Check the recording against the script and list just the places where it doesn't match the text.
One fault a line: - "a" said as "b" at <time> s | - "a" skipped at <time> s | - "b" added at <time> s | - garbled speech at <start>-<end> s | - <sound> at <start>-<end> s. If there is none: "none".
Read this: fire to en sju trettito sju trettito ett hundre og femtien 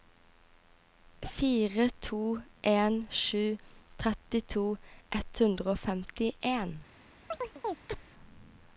- "sju trettito" skipped at 4.6 s
- chirp at 7.3-8.1 s